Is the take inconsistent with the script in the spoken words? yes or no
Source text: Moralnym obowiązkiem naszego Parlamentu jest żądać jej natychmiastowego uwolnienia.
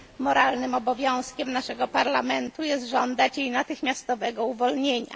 no